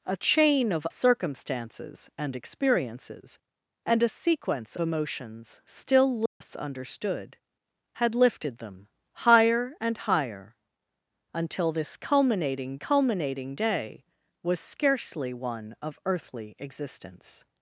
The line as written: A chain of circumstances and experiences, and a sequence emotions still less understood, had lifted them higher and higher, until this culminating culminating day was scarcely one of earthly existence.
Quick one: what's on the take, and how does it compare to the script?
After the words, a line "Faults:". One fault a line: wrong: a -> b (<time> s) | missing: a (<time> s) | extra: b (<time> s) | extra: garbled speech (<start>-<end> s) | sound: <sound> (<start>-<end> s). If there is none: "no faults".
A chain of circumstances and experiences, and a sequence emotions still less understood, had lifted them higher and higher, until this culminating culminating day was scarcely one of earthly existence.
Faults:
sound: dropout (6.3-6.4 s)